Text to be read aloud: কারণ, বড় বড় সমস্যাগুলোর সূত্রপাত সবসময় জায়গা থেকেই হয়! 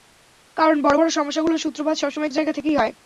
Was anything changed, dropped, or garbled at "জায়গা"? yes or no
no